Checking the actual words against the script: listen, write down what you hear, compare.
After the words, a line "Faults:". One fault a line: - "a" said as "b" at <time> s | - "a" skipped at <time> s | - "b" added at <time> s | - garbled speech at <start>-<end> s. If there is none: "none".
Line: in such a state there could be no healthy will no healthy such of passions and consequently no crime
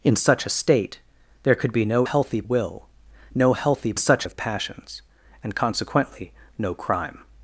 in such a state there could be no healthy will no healthy such of passions and consequently no crime
Faults:
none